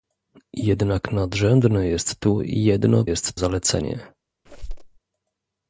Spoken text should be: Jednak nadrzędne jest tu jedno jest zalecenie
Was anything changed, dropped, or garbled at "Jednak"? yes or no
no